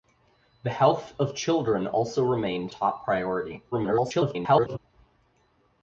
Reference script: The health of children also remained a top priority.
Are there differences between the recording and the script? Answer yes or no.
yes